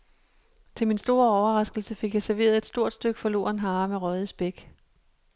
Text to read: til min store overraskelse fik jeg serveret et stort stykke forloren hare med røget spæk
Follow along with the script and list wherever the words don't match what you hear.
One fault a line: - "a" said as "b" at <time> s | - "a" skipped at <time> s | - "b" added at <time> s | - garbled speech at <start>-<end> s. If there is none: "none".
none